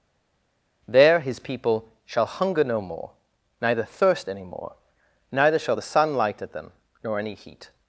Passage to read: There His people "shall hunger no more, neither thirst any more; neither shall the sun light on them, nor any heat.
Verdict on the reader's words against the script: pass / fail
fail